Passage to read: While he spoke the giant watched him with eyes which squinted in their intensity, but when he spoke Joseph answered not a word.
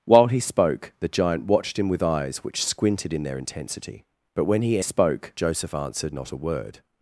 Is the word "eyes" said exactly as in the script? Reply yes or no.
yes